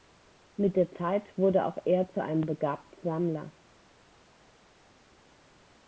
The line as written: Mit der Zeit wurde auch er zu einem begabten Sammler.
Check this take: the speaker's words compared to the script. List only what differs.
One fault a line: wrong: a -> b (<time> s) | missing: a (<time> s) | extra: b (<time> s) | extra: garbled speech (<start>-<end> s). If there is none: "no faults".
no faults